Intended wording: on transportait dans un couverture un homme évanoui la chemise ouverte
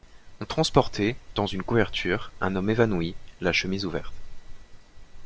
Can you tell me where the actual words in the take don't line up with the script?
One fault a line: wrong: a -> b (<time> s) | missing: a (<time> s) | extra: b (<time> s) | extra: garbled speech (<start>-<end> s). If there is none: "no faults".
wrong: un -> une (1.5 s)